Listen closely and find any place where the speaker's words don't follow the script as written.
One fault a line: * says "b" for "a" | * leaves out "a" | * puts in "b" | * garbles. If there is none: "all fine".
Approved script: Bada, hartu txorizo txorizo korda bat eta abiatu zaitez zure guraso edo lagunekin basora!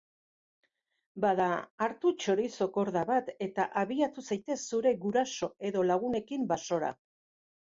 * leaves out "txorizo"